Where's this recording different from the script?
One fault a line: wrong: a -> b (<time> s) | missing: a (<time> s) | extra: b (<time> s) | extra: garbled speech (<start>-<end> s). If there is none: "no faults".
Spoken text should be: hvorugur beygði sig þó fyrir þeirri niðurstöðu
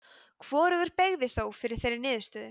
missing: sig (1.3 s)